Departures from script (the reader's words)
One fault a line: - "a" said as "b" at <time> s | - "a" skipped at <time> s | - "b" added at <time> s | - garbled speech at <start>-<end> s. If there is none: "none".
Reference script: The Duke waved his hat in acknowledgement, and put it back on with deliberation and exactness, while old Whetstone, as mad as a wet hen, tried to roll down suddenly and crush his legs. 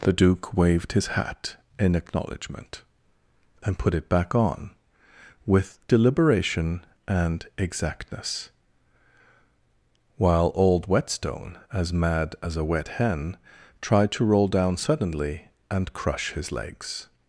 none